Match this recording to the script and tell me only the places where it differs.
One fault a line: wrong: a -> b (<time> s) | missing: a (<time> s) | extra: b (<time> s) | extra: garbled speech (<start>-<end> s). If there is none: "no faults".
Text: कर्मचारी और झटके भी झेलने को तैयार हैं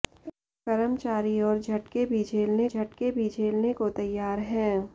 extra: झटके भी झेलने (2.7 s)